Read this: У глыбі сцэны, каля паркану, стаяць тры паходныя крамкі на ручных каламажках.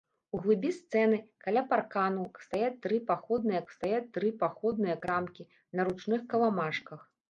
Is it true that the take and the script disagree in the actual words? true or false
true